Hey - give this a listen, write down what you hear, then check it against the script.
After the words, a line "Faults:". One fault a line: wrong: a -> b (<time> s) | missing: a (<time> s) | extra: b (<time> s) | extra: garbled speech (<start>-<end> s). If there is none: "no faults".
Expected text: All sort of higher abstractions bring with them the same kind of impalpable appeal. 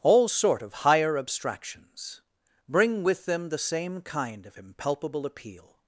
All sort of higher abstractions bring with them the same kind of impalpable appeal.
Faults:
no faults